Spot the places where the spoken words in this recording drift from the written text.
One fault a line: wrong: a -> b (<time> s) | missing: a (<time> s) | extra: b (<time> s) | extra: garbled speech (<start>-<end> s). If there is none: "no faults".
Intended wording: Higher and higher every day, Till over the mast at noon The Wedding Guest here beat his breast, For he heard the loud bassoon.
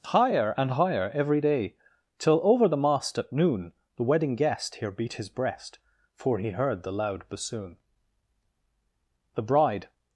extra: The bride (9.3 s)